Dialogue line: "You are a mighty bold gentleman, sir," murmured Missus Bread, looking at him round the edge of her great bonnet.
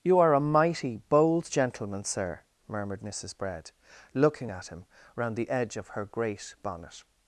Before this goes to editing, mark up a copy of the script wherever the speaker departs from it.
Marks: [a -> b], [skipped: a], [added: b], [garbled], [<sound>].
"You are a mighty bold gentleman, sir," murmured Missus Bread, looking at him round the edge of her great bonnet.